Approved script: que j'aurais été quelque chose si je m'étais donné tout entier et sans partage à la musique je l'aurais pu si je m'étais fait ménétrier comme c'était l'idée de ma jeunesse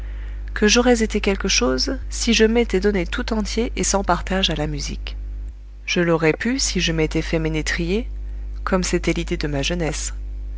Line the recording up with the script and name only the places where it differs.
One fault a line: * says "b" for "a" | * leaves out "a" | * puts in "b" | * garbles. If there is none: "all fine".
all fine